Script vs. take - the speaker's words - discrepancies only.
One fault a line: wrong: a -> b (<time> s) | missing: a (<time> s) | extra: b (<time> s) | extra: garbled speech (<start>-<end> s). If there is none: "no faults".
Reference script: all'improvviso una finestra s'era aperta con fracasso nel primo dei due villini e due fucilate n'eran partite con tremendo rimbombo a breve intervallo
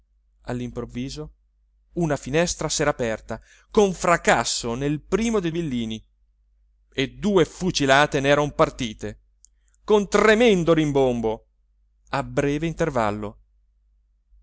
missing: due (5.5 s)